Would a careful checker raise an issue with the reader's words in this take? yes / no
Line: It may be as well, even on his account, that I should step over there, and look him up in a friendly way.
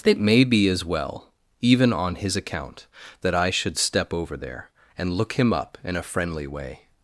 no